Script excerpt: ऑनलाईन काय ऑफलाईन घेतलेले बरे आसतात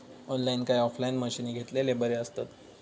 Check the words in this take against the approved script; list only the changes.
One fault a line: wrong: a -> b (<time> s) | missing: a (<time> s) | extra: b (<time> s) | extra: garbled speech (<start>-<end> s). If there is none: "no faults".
extra: मशीनी (1.2 s)